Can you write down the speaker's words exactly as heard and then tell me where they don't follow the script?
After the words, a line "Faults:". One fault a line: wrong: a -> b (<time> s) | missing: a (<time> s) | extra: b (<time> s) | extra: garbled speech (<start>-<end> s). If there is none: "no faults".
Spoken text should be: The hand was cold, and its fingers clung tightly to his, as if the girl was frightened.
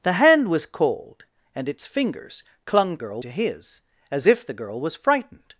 The hand was cold, and its fingers clung girl to his, as if the girl was frightened.
Faults:
wrong: tightly -> girl (3.0 s)